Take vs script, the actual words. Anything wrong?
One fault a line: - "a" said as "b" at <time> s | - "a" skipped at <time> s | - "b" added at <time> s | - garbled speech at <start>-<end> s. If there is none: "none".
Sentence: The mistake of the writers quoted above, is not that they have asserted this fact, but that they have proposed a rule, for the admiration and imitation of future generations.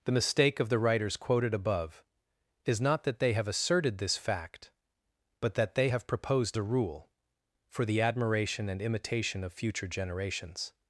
none